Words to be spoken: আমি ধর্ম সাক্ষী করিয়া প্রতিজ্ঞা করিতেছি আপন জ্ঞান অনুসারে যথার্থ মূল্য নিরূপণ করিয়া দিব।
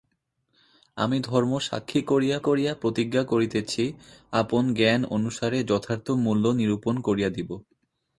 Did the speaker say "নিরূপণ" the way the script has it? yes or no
yes